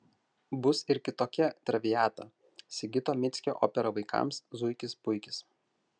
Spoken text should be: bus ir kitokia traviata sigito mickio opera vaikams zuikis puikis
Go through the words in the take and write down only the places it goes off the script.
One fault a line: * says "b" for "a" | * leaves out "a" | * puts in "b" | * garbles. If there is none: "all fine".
all fine